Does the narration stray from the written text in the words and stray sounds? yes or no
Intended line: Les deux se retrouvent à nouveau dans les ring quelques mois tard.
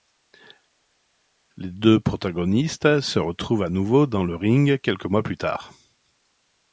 yes